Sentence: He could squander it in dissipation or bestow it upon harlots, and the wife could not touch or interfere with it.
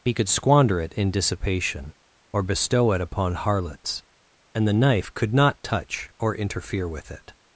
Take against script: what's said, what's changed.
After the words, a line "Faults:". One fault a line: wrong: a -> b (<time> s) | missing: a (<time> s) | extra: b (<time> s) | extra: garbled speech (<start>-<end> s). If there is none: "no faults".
He could squander it in dissipation or bestow it upon harlots, and the knife could not touch or interfere with it.
Faults:
wrong: wife -> knife (4.7 s)